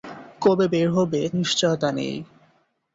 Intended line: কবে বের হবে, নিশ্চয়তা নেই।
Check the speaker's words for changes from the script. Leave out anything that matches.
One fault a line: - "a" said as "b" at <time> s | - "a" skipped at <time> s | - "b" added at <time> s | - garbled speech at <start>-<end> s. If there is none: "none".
none